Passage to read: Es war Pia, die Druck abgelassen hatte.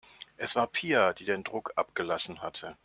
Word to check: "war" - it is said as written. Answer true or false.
true